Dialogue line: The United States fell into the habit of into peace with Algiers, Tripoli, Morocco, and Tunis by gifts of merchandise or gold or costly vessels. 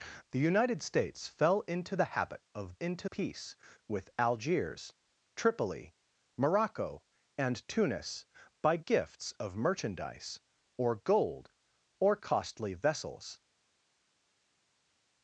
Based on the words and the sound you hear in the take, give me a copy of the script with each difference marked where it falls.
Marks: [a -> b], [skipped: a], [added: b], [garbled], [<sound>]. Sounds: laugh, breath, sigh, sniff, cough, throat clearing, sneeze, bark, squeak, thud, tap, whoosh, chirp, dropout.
The United States fell into the habit of into peace with Algiers, Tripoli, Morocco, and Tunis by gifts of merchandise or gold or costly vessels.